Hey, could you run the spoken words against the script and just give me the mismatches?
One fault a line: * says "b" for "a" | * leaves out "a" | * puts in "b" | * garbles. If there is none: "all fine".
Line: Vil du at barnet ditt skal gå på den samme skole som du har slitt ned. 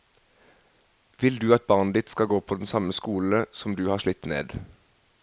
all fine